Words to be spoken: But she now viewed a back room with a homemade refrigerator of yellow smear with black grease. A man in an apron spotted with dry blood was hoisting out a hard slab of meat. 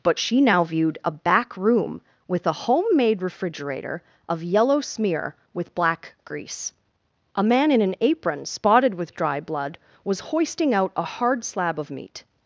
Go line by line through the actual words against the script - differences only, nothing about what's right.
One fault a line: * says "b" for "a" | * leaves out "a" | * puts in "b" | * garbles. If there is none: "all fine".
all fine